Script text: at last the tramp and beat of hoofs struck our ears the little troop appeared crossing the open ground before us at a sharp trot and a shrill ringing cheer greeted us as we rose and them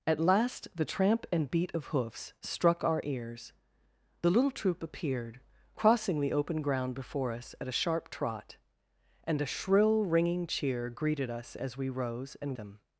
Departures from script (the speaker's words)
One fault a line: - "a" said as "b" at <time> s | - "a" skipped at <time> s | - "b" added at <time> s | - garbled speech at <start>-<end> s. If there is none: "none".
none